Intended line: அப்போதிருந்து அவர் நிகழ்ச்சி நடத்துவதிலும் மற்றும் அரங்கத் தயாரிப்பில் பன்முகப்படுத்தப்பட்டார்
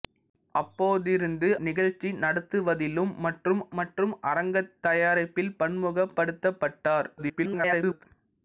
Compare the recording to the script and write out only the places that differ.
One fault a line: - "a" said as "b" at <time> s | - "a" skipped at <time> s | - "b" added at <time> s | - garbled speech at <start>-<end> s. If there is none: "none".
- "அவர்" skipped at 1.5 s
- "மற்றும்" added at 3.8 s
- garbled speech at 7.2-8.1 s